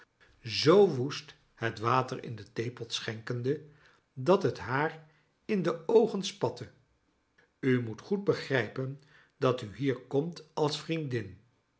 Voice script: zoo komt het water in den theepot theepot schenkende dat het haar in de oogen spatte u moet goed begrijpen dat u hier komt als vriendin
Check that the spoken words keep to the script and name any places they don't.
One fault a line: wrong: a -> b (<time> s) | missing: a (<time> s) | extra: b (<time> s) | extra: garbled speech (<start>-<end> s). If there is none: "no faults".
wrong: komt -> woest (0.9 s)
missing: theepot (2.9 s)